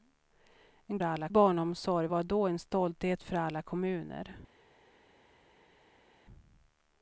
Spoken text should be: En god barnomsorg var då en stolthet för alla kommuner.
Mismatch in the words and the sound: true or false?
true